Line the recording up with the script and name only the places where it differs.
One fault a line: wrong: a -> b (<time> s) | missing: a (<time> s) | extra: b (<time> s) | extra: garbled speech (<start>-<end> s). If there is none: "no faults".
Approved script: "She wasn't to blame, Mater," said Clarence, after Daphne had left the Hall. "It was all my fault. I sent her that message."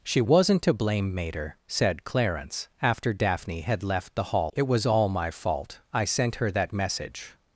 no faults